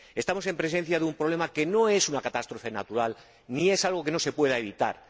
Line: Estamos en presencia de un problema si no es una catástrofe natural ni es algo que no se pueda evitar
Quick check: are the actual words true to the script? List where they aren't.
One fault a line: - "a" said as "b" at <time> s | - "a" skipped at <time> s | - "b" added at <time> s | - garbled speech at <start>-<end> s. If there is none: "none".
- "si" said as "que" at 1.5 s